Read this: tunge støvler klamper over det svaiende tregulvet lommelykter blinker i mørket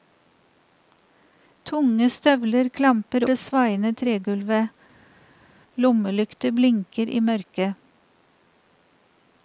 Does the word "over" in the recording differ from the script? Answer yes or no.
yes